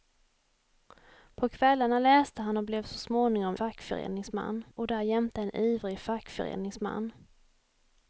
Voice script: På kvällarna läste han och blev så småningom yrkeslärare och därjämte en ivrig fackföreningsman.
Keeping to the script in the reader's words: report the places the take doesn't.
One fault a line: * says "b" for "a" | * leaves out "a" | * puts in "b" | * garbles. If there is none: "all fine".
* says "fackföreningsman" for "yrkeslärare"